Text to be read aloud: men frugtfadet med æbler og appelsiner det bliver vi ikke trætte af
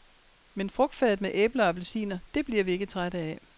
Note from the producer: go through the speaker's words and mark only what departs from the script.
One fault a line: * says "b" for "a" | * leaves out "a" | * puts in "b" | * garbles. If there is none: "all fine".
all fine